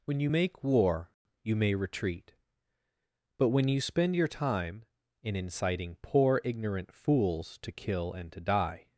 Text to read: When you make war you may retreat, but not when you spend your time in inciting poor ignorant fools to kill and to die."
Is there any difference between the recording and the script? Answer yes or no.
yes